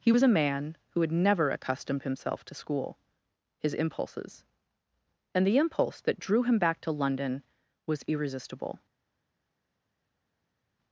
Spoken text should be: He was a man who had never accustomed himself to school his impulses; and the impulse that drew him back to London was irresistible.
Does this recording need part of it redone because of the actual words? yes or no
no